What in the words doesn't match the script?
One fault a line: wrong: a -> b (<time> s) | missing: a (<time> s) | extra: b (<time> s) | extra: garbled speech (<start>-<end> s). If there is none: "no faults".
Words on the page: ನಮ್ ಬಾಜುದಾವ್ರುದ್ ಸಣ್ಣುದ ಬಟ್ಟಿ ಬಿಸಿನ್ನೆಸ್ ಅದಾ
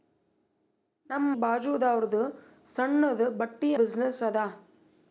no faults